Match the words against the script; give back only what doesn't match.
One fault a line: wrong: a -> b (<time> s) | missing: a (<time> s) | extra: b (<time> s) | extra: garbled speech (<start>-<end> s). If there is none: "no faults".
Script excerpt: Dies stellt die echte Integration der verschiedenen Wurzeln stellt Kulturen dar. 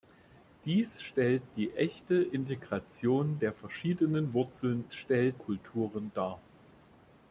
no faults